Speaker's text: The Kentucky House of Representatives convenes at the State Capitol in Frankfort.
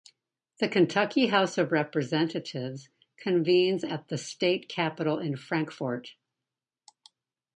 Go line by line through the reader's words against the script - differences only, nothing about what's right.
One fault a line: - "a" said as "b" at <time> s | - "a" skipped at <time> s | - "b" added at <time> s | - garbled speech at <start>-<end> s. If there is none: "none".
none